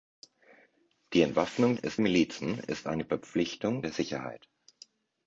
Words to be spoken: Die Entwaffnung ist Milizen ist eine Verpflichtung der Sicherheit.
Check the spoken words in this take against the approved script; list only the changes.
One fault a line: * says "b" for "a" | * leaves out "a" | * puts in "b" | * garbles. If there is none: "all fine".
all fine